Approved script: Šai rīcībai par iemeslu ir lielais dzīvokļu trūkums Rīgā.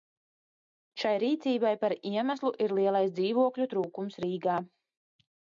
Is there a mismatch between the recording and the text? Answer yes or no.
no